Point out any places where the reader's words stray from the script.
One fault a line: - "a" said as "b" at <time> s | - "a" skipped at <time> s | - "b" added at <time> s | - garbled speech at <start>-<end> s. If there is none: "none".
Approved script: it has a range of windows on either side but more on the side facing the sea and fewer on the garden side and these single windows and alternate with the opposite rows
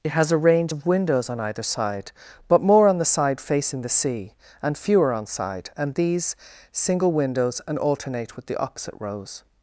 - "the garden" skipped at 5.3 s